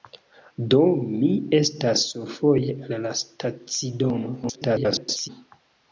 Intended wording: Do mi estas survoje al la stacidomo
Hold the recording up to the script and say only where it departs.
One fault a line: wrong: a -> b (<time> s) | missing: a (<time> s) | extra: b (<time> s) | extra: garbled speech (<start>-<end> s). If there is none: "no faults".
extra: garbled speech (4.4-5.3 s)